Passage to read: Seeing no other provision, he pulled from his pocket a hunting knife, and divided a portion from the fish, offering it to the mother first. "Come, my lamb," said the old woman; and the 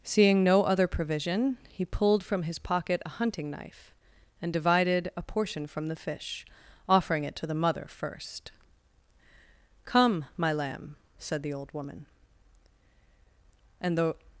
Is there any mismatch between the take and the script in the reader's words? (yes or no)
no